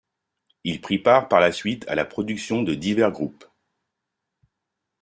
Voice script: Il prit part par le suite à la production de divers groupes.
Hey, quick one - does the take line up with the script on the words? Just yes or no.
no